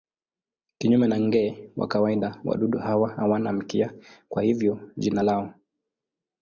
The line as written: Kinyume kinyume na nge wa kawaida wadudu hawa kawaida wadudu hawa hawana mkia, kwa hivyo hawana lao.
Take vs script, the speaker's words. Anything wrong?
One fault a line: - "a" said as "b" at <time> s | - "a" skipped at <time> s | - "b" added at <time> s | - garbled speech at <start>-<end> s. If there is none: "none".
- "kinyume" skipped at 1.1 s
- "kawaida wadudu hawa" skipped at 3.1 s
- "hawana" said as "jina" at 5.0 s